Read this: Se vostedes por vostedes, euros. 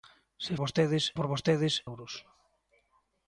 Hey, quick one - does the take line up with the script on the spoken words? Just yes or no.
yes